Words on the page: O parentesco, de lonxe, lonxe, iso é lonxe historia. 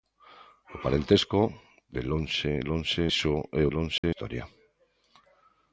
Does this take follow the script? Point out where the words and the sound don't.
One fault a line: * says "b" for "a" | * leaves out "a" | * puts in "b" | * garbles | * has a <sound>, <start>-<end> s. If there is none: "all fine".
* has a dropout, 4.0-4.0 s